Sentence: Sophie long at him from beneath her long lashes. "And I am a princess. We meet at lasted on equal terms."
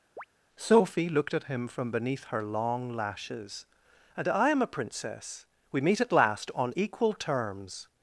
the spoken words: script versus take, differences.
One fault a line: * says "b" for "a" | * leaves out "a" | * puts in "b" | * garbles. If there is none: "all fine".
* says "looked" for "long"
* says "last" for "lasted"